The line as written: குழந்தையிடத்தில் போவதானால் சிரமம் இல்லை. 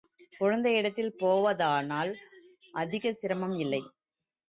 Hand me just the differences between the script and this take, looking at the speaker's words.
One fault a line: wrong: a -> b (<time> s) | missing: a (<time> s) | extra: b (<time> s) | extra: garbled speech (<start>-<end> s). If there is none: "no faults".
extra: அதிகச் (2.7 s)